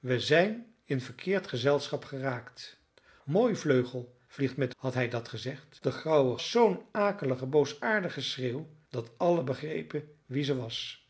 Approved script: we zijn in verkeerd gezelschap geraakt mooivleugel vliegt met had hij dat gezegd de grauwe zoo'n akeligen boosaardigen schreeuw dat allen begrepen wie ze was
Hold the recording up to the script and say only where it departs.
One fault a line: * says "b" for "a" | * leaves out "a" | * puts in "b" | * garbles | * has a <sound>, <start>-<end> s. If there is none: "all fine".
all fine